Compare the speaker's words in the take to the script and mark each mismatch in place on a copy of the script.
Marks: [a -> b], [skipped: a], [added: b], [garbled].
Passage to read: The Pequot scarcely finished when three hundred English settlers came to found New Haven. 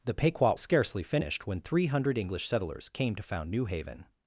The Pequot scarcely finished when three hundred English settlers came to found New Haven.